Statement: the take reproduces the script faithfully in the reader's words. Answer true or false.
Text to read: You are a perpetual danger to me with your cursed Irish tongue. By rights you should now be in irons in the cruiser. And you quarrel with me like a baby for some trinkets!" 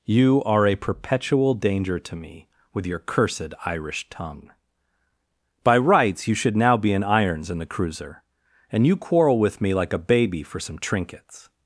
true